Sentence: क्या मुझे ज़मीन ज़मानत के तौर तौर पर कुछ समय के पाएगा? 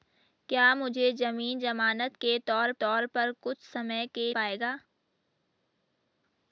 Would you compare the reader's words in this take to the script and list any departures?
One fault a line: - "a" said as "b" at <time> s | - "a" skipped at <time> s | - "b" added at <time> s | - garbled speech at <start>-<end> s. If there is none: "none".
none